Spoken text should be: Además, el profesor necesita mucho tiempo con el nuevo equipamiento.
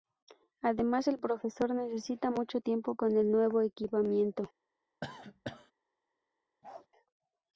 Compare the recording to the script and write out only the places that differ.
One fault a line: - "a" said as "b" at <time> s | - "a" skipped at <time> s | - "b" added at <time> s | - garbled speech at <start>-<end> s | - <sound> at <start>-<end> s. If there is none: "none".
- cough at 5.0-5.7 s
- bark at 6.6-6.9 s